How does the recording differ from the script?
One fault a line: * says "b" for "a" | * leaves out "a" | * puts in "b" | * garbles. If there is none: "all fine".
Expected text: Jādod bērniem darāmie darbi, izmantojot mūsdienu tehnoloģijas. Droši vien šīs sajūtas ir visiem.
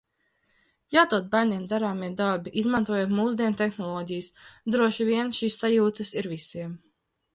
all fine